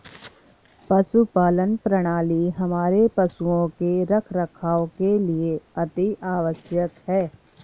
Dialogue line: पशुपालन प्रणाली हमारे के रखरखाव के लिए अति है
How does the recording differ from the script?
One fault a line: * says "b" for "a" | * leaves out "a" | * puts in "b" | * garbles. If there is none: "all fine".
* puts in "पशुओं"
* puts in "आवश्यक"